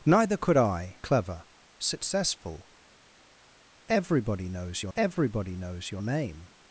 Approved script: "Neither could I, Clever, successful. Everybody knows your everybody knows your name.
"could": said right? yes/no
yes